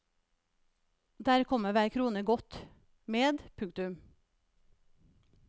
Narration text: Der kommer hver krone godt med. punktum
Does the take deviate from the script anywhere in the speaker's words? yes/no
no